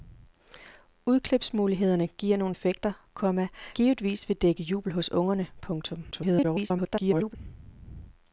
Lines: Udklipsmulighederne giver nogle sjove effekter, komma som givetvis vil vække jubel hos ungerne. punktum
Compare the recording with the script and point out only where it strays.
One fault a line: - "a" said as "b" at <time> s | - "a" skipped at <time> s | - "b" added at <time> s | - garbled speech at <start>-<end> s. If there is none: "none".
- "sjove" skipped at 2.5 s
- "som" skipped at 3.5 s
- garbled speech at 6.1-7.4 s